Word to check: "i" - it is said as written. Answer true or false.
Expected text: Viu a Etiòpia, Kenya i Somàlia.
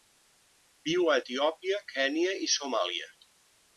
true